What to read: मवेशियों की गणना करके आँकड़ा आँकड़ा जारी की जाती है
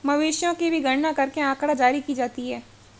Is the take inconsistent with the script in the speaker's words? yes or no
yes